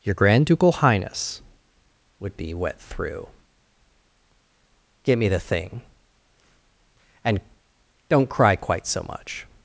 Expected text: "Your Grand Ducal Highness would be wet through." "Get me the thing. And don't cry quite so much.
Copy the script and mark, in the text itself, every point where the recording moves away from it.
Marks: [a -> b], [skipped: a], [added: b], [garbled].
"Your Grand Ducal Highness would be wet through." "Get me the thing. And don't cry quite so much.